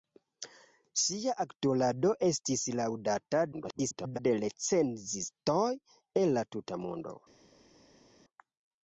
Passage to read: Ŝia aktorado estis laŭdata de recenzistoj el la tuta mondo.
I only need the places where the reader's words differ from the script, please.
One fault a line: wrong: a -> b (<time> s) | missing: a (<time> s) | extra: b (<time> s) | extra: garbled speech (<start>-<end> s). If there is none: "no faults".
extra: garbled speech (3.5-4.2 s)